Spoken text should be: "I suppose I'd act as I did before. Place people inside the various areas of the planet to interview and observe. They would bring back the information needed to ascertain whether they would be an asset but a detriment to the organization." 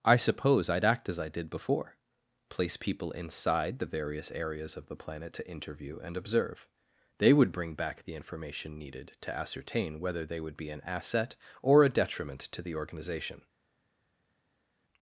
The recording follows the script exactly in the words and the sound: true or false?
false